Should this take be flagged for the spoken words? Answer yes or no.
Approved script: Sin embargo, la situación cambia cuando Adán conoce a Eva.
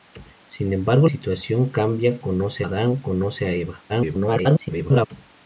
yes